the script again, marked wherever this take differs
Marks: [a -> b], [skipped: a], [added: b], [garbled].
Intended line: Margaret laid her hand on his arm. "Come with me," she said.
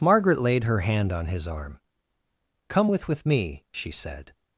Margaret laid her hand on his arm. "Come with [added: with] me," she said.